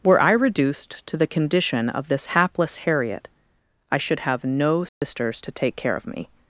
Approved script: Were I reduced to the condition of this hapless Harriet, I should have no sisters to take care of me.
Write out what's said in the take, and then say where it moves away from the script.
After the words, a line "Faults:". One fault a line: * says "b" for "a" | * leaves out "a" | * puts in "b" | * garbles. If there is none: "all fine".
Were I reduced to the condition of this hapless Harriet, I should have no sisters to take care of me.
Faults:
all fine